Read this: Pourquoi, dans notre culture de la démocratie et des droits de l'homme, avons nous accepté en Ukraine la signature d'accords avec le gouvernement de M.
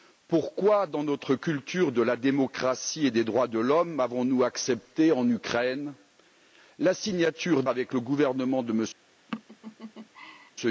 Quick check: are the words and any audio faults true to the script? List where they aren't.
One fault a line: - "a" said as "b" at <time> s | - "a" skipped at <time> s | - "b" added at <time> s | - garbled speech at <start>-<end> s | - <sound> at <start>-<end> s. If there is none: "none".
- "d'accords" skipped at 7.6 s
- laugh at 9.3-10.5 s